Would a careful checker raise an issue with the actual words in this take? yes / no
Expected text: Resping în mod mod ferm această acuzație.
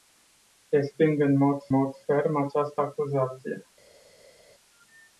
no